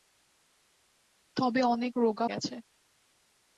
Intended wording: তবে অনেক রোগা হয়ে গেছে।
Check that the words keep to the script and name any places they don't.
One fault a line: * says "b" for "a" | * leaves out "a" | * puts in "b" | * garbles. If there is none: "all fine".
* leaves out "হয়ে"